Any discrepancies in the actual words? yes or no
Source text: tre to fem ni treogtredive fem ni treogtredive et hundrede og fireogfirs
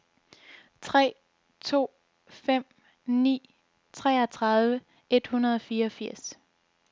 yes